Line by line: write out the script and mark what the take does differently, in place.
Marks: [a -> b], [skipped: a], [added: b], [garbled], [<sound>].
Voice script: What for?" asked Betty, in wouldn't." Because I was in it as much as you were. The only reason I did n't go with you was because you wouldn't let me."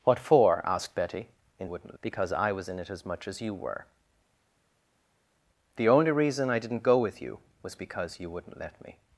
What for?" asked Betty, in wouldn't." Because I was in it as much as you were. The only reason I did n't go with you was because you wouldn't let me."